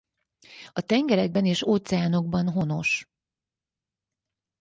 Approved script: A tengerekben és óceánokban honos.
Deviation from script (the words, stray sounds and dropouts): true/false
false